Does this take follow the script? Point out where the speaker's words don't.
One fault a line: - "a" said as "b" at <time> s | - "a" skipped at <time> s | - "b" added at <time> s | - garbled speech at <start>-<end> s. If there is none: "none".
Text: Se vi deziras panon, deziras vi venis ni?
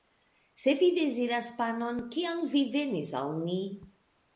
- "deziras" said as "kial" at 2.2 s
- "al" added at 3.2 s